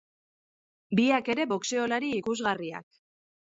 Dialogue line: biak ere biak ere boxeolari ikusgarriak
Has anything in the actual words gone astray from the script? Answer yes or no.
yes